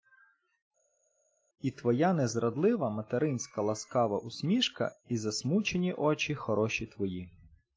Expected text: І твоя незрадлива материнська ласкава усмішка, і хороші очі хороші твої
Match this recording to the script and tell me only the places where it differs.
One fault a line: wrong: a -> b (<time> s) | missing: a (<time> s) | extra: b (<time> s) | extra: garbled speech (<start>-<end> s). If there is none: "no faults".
wrong: хороші -> засмучені (5.2 s)